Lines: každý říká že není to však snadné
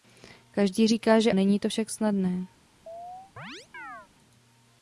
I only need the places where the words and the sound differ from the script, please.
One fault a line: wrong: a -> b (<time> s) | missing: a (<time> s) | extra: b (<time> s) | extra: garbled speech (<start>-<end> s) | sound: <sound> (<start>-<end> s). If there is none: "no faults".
sound: chirp (2.9-4.1 s)